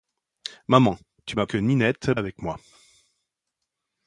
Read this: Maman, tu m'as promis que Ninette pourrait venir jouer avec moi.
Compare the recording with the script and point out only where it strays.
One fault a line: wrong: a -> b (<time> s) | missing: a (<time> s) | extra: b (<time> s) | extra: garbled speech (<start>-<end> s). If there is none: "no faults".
missing: promis (1.5 s)
missing: pourrait venir jouer (2.1 s)